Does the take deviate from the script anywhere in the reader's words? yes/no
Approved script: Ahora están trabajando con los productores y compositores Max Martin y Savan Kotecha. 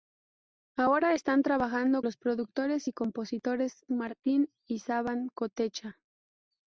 yes